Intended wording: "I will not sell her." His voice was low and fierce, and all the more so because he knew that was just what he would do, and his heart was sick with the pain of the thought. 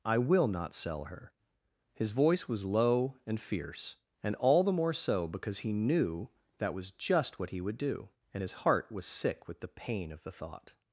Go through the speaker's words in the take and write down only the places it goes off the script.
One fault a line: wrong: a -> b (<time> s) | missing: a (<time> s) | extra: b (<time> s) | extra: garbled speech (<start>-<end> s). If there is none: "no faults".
no faults